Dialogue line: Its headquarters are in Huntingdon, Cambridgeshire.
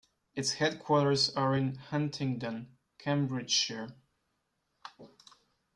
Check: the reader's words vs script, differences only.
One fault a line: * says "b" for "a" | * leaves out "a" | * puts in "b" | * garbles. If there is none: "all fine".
all fine